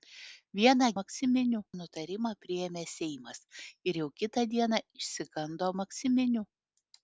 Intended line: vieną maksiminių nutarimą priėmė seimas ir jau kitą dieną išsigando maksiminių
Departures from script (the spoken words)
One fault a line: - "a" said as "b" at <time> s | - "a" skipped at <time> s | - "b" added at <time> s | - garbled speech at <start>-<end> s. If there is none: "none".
none